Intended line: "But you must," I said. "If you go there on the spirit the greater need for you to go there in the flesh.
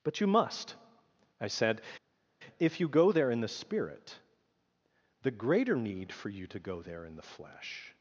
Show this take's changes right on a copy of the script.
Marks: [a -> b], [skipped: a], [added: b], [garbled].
"But you must," I said. "If you go there [on -> in] the spirit the greater need for you to go there in the flesh.